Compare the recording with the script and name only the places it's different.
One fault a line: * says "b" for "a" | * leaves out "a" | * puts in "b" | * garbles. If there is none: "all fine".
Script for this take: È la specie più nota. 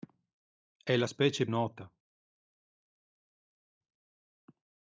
* leaves out "più"